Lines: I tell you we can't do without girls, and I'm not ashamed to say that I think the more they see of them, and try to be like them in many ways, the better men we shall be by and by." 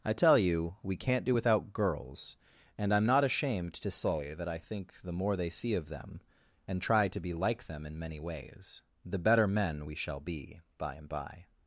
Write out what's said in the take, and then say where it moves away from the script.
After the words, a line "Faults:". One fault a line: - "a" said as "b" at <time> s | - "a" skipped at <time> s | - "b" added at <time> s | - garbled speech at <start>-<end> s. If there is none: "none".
I tell you we can't do without girls, and I'm not ashamed to say that I think the more they see of them, and try to be like them in many ways, the better men we shall be by and by."
Faults:
none